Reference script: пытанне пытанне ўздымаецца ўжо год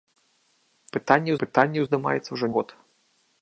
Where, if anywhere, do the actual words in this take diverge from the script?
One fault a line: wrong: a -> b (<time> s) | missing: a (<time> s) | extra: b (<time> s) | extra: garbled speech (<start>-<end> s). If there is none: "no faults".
no faults